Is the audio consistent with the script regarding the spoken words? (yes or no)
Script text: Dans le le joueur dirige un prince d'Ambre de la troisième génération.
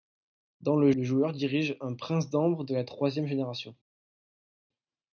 yes